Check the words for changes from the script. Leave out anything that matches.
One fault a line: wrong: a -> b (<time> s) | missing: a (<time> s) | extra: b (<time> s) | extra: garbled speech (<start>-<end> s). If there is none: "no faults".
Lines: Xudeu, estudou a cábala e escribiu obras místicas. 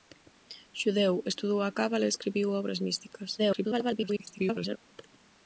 extra: garbled speech (3.4-4.8 s)